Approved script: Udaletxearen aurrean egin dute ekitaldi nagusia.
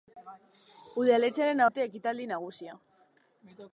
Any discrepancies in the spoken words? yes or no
yes